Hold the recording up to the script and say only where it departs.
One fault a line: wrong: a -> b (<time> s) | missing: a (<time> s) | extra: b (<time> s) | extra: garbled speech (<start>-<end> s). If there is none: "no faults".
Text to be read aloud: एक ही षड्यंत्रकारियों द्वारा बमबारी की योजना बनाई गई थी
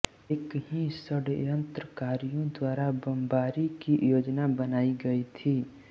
no faults